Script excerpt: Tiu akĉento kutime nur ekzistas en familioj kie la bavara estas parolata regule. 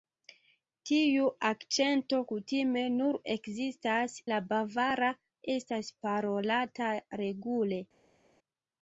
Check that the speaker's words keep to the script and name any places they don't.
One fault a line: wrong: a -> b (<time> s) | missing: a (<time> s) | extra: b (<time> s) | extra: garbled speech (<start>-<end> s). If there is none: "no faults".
missing: en familioj kie (4.2 s)